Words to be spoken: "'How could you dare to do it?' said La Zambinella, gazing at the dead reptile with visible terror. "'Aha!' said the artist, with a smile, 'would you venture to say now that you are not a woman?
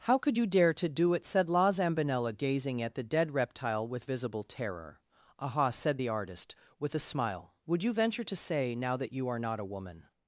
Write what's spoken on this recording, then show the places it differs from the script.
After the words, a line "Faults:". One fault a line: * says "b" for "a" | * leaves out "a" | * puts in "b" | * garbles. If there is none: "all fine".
"'How could you dare to do it?' said La Zambinella, gazing at the dead reptile with visible terror. "'Aha!' said the artist, with a smile, 'would you venture to say now that you are not a woman?
Faults:
all fine